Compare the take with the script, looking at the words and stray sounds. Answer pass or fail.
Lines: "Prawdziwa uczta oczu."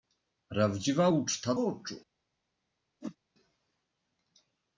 fail